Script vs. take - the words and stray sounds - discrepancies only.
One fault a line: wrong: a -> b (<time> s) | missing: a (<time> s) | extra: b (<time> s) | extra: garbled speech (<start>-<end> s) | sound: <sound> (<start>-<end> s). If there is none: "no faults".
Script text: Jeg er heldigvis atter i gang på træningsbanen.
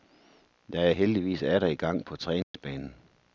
sound: dropout (2.4-2.5 s)